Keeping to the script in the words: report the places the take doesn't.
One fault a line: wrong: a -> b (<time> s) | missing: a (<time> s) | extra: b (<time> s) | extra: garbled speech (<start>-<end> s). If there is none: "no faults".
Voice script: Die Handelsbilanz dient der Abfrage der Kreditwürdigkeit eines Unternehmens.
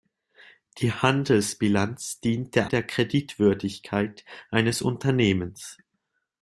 missing: Abfrage (2.7 s)